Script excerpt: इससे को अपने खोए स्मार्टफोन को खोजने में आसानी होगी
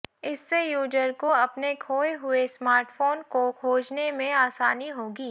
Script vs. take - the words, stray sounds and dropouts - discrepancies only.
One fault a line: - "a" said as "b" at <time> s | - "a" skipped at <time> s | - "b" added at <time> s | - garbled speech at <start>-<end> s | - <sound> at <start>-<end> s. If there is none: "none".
- "यूजर" added at 0.6 s
- "हुए" added at 2.1 s